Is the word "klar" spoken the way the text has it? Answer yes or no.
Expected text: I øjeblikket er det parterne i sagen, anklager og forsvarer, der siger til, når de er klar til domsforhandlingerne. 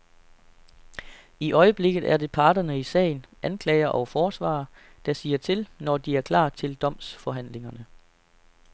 yes